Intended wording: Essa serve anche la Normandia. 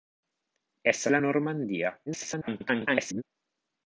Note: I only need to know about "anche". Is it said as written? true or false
false